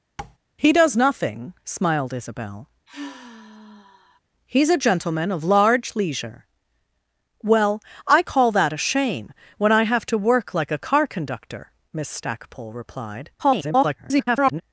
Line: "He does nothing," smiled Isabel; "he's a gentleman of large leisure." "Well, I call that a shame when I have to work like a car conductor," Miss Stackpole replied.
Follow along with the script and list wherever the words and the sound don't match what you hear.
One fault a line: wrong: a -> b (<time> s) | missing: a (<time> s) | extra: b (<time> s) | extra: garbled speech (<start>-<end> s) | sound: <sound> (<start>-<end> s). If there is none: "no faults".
sound: tap (0.2-0.4 s)
sound: sigh (2.9-4.2 s)
extra: garbled speech (13.4-14.6 s)